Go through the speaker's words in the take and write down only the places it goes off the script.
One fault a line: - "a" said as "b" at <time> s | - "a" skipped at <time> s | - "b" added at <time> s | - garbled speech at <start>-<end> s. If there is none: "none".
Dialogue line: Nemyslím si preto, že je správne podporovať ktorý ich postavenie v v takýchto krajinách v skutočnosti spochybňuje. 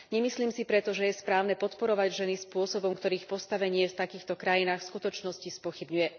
- "ženy spôsobom" added at 2.2 s
- "v" skipped at 4.0 s